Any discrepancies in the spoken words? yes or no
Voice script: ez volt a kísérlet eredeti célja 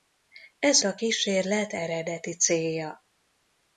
yes